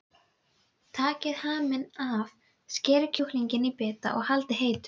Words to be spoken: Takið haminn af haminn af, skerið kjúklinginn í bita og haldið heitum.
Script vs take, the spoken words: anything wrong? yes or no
yes